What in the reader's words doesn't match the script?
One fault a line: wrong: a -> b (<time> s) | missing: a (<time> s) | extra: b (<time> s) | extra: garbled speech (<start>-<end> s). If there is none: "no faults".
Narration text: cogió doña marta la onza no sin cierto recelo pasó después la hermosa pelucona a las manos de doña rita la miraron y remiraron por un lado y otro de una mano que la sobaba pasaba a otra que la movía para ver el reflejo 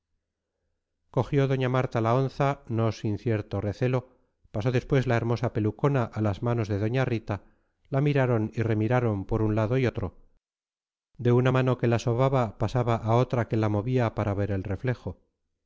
no faults